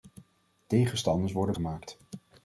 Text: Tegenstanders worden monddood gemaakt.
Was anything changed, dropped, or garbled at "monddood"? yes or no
yes